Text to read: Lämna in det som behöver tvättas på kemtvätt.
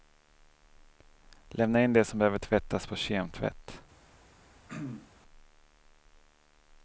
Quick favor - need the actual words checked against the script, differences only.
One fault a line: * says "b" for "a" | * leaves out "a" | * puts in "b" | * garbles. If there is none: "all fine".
all fine